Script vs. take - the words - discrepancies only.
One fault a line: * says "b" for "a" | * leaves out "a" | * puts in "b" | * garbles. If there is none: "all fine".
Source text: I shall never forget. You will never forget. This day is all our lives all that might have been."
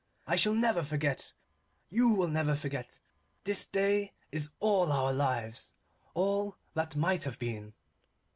all fine